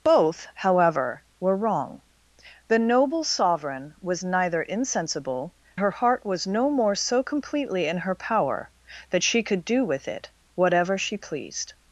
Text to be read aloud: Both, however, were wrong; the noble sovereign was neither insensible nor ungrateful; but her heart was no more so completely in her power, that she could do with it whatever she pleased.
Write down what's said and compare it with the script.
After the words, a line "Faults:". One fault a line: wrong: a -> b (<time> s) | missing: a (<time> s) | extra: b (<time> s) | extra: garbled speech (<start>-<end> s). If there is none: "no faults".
Both, however, were wrong; the noble sovereign was neither insensible her heart was no more so completely in her power, that she could do with it whatever she pleased.
Faults:
missing: nor ungrateful but (5.5 s)